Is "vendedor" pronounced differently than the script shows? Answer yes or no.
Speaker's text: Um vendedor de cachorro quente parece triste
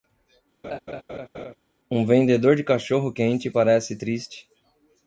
no